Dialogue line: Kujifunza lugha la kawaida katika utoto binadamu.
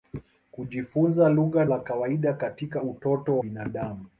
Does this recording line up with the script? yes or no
yes